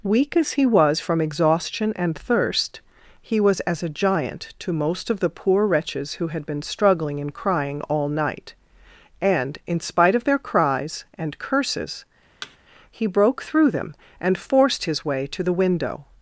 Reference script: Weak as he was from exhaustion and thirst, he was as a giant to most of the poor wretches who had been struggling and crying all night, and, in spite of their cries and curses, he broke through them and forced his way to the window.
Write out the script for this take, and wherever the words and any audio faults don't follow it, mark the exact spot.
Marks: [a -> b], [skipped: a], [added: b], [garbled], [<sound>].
Weak as he was from exhaustion and thirst, he was as a giant to most of the poor wretches who had been struggling and crying all night, and, in spite of their cries and curses, [thud] he broke through them and forced his way to the window.